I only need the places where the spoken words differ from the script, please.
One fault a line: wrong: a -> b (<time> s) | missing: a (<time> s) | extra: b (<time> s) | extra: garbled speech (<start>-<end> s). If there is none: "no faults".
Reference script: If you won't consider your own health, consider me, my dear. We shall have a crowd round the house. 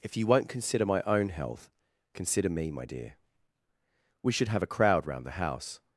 wrong: your -> my (0.8 s)
wrong: shall -> should (4.3 s)